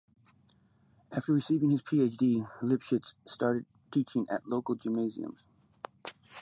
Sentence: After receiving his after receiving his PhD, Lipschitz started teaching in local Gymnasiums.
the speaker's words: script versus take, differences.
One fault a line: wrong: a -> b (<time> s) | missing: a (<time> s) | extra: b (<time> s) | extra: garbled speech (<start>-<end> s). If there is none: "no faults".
missing: after receiving his (1.8 s)
wrong: in -> at (4.3 s)